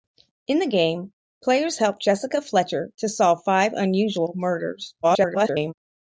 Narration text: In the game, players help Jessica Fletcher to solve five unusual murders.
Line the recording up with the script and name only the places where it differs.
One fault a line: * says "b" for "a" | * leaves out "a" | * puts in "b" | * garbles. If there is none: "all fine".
* garbles